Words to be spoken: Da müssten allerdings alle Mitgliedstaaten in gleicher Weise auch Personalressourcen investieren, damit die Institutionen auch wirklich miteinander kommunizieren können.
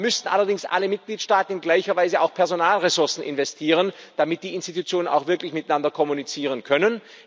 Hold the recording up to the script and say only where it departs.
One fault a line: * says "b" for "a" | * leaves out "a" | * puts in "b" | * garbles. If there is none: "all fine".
all fine